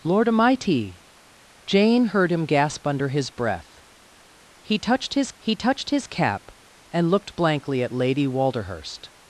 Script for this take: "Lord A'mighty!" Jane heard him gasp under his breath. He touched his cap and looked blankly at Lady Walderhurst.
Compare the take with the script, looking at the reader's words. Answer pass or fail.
fail